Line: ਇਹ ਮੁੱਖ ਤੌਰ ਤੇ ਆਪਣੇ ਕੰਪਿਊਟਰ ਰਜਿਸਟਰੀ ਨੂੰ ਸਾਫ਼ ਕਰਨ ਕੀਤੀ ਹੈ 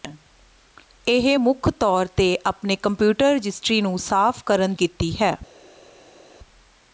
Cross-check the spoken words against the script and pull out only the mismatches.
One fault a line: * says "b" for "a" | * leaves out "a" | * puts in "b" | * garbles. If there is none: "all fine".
all fine